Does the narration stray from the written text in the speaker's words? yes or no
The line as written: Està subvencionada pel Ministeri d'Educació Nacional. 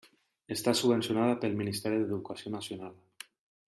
no